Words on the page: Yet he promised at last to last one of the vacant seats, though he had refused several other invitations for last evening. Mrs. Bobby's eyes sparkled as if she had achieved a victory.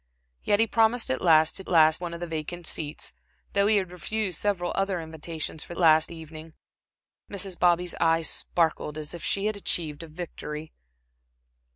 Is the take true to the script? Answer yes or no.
yes